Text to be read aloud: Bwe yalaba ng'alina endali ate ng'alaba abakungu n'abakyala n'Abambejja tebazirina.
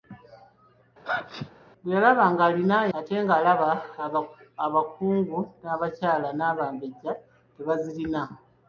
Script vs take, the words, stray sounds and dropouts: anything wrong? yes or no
yes